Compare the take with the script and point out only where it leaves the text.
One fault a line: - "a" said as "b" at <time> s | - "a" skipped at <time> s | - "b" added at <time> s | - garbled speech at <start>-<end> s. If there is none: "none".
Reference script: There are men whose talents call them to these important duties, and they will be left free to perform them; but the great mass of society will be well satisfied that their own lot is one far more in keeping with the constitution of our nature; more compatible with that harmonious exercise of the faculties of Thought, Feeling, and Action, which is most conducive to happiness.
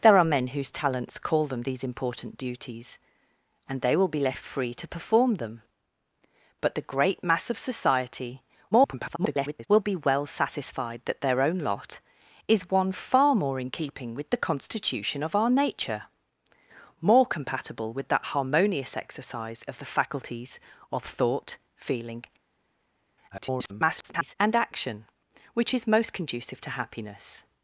- "to" skipped at 1.6 s
- garbled speech at 8.7-9.7 s
- garbled speech at 23.3-24.4 s